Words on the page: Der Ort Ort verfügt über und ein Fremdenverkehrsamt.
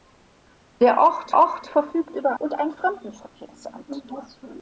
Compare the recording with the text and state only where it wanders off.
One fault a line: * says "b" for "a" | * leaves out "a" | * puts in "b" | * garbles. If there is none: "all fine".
all fine